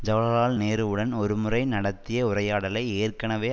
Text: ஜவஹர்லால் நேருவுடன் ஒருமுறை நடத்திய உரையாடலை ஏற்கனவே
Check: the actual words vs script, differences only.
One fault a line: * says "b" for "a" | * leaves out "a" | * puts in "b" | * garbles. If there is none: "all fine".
all fine